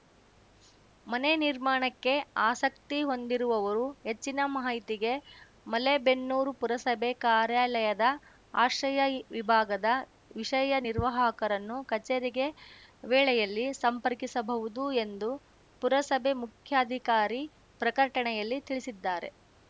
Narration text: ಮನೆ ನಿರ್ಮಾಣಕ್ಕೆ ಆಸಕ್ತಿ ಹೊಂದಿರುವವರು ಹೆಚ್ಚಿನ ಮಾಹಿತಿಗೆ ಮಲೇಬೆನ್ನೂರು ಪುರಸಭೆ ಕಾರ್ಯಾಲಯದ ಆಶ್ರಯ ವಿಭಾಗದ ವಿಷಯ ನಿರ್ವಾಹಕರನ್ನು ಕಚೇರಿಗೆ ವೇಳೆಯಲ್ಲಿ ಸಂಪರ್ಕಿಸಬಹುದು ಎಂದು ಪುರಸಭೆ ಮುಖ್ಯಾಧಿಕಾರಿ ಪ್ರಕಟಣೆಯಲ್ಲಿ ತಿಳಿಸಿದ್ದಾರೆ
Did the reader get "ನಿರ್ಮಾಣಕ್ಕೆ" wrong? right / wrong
right